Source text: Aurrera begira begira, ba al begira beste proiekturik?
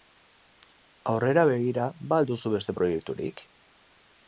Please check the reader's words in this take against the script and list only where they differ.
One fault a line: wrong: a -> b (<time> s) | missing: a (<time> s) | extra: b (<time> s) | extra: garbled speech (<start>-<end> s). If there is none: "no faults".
missing: begira (1.9 s)
wrong: begira -> duzu (2.3 s)